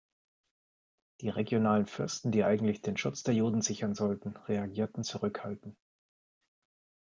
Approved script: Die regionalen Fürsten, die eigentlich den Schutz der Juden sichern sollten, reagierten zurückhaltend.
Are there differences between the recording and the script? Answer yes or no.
no